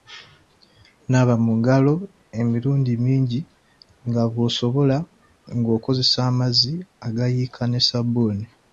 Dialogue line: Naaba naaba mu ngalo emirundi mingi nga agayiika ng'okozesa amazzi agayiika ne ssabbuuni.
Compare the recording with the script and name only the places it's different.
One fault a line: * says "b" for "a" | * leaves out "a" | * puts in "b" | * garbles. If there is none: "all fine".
* leaves out "naaba"
* says "bw'osobola" for "agayiika"